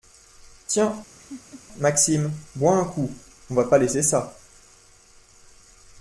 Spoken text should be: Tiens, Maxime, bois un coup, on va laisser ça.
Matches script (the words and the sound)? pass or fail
fail